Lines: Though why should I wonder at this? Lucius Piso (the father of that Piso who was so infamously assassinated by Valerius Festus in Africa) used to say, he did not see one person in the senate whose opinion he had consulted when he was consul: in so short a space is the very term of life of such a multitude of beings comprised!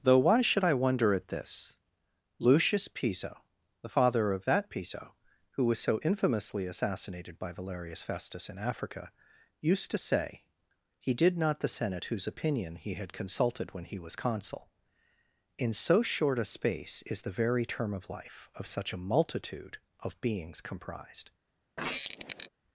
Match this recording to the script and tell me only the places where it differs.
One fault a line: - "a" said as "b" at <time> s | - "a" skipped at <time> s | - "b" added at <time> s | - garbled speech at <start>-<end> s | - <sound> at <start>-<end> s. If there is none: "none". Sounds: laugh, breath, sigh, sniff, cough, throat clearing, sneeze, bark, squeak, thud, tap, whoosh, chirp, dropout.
- "see one person in" skipped at 11.6 s
- squeak at 21.8-22.5 s